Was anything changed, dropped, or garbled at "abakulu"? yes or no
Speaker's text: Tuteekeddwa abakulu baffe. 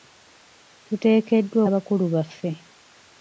no